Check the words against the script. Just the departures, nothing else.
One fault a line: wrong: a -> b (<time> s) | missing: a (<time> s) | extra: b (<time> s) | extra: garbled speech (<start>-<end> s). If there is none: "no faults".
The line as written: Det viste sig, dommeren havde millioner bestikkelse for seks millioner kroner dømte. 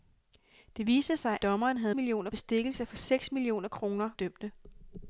no faults